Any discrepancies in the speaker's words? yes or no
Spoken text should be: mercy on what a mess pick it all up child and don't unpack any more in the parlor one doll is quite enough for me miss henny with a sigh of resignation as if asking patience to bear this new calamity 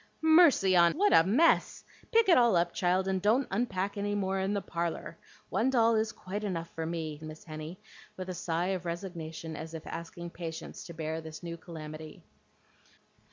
no